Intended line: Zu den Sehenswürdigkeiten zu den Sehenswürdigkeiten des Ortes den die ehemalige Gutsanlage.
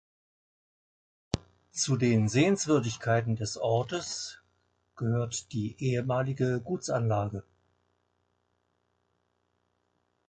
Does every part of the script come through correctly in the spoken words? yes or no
no